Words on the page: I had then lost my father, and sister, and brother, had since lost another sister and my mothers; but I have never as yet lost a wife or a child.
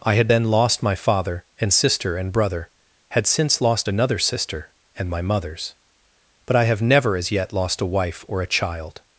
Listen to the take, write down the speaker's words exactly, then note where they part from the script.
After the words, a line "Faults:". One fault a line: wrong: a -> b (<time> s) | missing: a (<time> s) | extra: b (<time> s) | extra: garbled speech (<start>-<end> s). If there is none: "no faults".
I had then lost my father, and sister, and brother, had since lost another sister and my mothers; but I have never as yet lost a wife or a child.
Faults:
no faults